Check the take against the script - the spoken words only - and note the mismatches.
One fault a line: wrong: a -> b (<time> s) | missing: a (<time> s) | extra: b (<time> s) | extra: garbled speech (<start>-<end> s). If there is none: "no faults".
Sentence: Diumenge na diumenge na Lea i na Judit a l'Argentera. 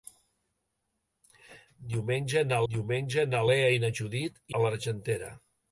no faults